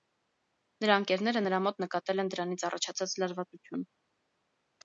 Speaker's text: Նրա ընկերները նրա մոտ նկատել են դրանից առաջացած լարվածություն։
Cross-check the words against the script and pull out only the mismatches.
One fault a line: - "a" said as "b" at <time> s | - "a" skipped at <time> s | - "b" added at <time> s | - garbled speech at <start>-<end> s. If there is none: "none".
none